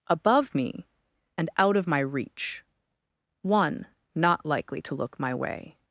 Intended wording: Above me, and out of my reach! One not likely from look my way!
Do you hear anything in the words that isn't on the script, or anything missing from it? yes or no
yes